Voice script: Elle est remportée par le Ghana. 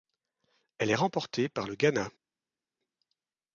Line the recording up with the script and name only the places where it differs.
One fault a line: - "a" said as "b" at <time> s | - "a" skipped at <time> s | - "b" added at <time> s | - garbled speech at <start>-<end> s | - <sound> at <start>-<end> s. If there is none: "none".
none